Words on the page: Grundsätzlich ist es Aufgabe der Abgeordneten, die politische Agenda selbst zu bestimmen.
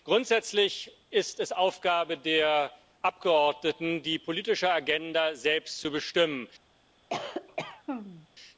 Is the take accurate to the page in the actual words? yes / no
yes